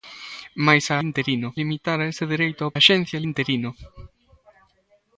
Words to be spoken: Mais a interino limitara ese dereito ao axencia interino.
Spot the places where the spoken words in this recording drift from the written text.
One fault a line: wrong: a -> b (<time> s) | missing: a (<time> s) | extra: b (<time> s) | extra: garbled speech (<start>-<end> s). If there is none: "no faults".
no faults